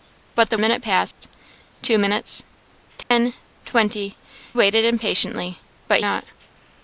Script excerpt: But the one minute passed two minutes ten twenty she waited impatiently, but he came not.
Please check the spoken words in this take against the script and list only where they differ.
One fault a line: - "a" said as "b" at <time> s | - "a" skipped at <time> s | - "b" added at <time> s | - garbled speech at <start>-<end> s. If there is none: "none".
- "one" skipped at 0.6 s
- "she" skipped at 4.2 s
- "he came" skipped at 6.0 s